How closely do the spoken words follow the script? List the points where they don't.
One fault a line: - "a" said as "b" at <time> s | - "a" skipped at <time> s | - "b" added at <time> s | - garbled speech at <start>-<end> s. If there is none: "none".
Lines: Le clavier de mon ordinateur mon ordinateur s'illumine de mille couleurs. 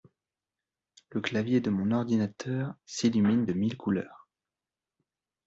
- "mon ordinateur" skipped at 2.7 s